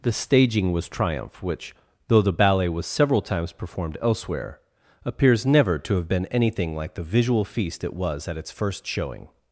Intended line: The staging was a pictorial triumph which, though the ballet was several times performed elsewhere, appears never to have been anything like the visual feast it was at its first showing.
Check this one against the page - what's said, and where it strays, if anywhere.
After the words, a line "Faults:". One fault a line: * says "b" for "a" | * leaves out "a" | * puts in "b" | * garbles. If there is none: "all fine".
The staging was triumph which, though the ballet was several times performed elsewhere, appears never to have been anything like the visual feast it was at its first showing.
Faults:
* leaves out "a pictorial"